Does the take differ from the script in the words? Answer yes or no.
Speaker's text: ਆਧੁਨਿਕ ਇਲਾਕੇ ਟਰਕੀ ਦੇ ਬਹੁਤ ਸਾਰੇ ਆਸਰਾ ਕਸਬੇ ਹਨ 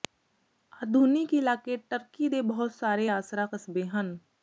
no